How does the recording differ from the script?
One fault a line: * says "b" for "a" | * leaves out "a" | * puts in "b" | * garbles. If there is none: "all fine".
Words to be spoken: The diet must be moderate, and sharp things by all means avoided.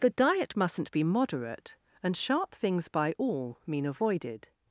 * says "mustn't" for "must"
* says "mean" for "means"